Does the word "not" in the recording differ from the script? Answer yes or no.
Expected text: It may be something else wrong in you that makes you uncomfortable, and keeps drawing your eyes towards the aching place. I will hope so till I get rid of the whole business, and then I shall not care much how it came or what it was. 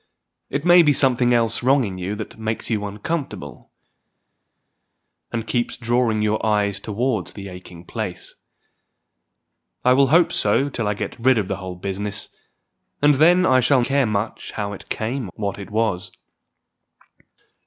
yes